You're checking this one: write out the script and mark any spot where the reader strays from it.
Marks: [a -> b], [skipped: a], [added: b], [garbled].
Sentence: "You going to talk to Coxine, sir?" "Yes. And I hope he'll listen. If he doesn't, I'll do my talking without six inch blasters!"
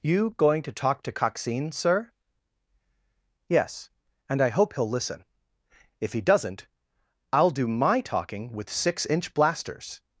"You going to talk to Coxine, sir?" "Yes. And I hope he'll listen. If he doesn't, I'll do my talking [without -> with] six inch blasters!"